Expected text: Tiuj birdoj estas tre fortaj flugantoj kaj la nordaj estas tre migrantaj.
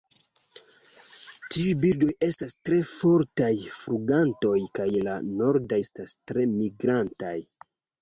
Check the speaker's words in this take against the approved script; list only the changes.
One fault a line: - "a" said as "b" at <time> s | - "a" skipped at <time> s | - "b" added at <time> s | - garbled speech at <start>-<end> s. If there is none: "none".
none